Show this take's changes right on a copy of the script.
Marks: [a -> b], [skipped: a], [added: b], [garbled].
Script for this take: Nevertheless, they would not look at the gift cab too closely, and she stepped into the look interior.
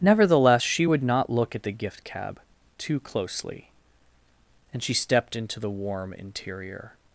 Nevertheless, [they -> she] would not look at the gift cab too closely, and she stepped into the [look -> warm] interior.